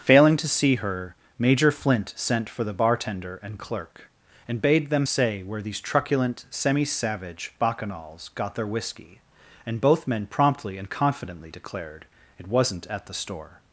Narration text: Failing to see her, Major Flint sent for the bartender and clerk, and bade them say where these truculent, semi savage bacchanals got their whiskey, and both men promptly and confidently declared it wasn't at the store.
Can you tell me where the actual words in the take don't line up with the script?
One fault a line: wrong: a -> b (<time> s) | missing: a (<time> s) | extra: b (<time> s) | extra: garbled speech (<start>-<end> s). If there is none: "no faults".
no faults